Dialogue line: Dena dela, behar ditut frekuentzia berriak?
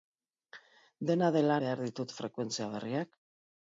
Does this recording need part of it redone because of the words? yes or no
no